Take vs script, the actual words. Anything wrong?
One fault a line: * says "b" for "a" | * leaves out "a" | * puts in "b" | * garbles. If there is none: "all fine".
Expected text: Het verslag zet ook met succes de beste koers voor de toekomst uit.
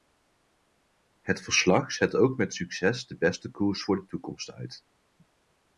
all fine